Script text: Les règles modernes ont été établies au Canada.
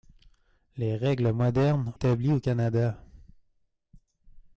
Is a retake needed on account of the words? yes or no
yes